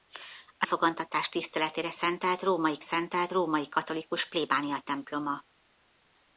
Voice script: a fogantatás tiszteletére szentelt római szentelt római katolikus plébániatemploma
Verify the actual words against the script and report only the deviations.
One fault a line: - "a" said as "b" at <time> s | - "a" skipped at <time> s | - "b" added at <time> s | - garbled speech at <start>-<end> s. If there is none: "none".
none